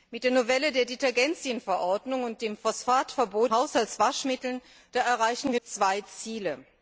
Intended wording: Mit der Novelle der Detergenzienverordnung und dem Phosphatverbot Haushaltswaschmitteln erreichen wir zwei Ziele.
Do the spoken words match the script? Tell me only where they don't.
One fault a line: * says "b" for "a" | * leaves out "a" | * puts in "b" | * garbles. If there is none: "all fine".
all fine